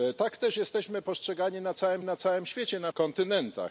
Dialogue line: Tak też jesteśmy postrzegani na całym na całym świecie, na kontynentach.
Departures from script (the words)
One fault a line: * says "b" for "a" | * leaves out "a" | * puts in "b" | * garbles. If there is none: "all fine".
all fine